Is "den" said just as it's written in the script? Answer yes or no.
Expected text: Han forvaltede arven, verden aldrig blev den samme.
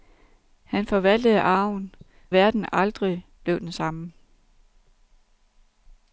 yes